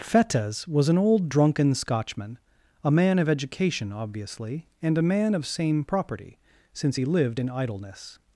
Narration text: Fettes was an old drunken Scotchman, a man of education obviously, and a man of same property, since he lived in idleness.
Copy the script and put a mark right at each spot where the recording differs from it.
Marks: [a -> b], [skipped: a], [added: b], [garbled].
Fettes was an old drunken Scotchman, a man of education obviously, and a man of same property, since he lived in idleness.